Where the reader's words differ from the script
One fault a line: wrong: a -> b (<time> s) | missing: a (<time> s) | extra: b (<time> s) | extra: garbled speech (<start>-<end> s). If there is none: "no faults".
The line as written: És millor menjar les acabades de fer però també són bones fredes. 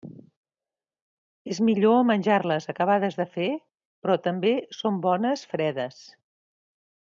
no faults